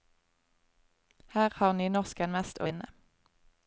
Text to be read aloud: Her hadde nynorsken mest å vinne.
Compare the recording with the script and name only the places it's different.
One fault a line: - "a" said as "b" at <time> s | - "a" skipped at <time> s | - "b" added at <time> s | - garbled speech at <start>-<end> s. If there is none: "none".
- "hadde" said as "har" at 1.6 s